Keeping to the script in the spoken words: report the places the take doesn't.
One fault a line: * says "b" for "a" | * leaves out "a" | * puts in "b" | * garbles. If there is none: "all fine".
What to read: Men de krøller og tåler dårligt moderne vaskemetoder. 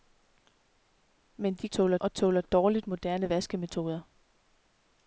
* says "tåler" for "krøller"